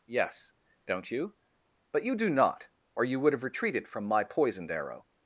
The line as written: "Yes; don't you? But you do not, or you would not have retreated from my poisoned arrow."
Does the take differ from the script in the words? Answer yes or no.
yes